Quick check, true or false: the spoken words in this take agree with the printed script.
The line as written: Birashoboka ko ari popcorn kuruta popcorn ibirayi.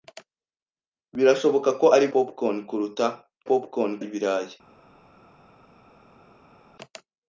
true